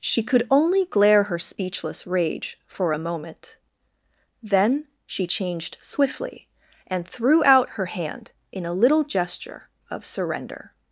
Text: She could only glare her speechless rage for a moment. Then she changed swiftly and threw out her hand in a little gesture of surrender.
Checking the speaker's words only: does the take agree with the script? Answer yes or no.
yes